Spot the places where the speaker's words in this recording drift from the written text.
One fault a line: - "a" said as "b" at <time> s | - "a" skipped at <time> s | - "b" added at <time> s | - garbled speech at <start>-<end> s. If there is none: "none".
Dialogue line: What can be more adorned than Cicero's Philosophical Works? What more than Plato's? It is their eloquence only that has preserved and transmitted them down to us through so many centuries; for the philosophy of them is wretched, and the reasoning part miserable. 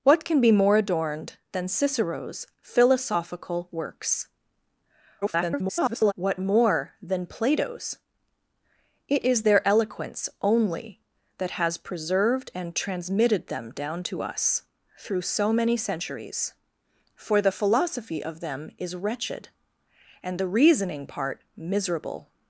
- garbled speech at 5.2-6.1 s